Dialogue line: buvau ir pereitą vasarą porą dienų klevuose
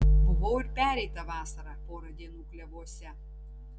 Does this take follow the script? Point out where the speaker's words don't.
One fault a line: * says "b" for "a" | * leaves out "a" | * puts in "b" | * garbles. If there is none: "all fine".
all fine